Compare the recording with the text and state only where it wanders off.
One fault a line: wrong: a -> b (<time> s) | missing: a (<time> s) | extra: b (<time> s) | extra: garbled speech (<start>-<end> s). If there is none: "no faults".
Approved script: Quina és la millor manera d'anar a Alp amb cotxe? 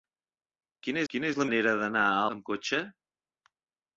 extra: quina (1.1 s)
missing: millor (1.5 s)
missing: Alp (2.2 s)